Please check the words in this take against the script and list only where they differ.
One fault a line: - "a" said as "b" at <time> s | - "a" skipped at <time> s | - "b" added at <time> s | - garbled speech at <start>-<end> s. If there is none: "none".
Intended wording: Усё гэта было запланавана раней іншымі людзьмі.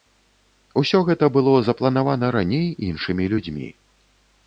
none